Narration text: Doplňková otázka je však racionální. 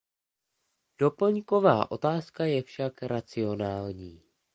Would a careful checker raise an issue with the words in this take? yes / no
no